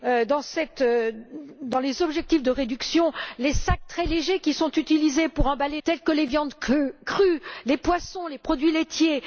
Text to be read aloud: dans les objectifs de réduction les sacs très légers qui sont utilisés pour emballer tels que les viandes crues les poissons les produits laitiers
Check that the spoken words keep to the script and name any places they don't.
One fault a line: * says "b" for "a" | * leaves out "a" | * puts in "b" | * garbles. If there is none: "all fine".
all fine